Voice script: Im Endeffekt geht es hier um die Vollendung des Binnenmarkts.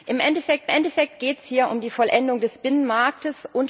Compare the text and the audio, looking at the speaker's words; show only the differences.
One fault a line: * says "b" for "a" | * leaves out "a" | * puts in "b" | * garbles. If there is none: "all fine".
* puts in "Endeffekt"